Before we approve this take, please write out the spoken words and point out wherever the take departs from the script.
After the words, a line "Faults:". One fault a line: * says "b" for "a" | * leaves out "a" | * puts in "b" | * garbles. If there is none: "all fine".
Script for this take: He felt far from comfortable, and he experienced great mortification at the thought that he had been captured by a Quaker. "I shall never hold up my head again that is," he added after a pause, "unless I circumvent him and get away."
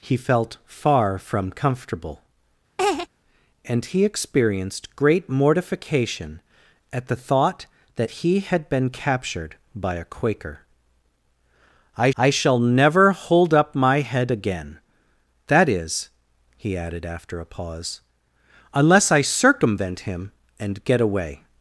He felt far from comfortable, and he experienced great mortification at the thought that he had been captured by a Quaker. "I I shall never hold up my head again that is," he added after a pause, "unless I circumvent him and get away."
Faults:
* puts in "I"